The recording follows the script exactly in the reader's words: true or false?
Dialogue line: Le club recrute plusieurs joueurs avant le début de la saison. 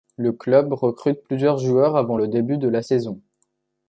true